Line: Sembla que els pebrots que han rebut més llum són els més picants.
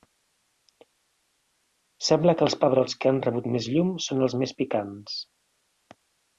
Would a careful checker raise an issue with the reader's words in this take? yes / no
no